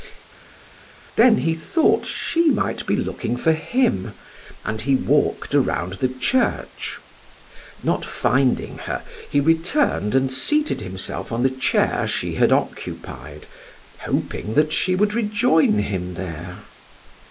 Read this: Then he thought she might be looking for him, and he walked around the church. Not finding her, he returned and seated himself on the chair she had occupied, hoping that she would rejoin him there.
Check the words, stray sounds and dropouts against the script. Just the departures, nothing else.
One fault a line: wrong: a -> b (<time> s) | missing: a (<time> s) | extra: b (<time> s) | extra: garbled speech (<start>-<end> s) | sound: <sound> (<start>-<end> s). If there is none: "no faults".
no faults